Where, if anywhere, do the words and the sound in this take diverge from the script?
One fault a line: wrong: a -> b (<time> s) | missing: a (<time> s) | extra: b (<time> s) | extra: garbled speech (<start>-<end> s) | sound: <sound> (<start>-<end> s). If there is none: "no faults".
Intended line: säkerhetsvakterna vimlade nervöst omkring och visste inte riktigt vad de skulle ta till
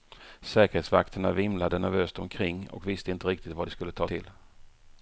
no faults